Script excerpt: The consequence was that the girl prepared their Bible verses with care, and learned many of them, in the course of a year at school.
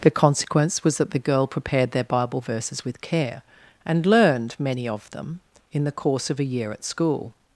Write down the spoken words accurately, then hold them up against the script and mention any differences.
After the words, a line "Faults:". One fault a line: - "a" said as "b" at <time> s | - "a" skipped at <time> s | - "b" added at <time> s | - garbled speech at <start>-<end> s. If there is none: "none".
The consequence was that the girl prepared their Bible verses with care, and learned many of them, in the course of a year at school.
Faults:
none